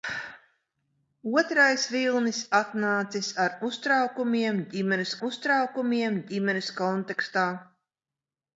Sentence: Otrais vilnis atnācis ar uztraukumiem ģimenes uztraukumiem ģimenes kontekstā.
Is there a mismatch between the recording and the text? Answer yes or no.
no